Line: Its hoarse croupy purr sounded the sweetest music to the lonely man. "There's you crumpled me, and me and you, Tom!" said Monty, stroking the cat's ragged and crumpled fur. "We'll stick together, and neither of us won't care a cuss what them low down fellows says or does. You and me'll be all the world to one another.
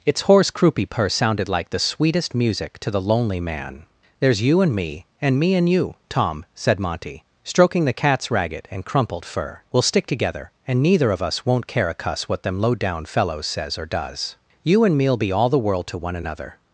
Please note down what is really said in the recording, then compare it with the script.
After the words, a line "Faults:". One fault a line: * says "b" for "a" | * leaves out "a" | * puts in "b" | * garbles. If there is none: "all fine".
Its hoarse croupy purr sounded like the sweetest music to the lonely man. "There's you and me, and me and you, Tom!" said Monty, stroking the cat's ragged and crumpled fur. "We'll stick together, and neither of us won't care a cuss what them low down fellows says or does. You and me'll be all the world to one another.
Faults:
* puts in "like"
* says "and" for "crumpled"